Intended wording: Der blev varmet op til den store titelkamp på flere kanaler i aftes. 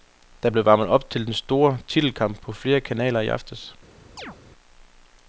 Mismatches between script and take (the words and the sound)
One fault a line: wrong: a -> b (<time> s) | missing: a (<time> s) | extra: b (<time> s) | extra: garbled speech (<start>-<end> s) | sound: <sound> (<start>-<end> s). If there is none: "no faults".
sound: chirp (4.2-4.4 s)